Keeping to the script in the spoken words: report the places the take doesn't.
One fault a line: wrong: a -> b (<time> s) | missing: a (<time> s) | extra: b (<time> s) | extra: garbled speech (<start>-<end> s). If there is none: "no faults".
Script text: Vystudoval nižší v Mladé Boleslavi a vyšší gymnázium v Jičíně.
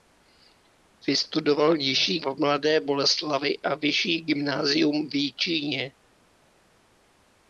no faults